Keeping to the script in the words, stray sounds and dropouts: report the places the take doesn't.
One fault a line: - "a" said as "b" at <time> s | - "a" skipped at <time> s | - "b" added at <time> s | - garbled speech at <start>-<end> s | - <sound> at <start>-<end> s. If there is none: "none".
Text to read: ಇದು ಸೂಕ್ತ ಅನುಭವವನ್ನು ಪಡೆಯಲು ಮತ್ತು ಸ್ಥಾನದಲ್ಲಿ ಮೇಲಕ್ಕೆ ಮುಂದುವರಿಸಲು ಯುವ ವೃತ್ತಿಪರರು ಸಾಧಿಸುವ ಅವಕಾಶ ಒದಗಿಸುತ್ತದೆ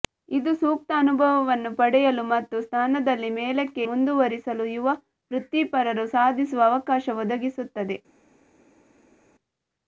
none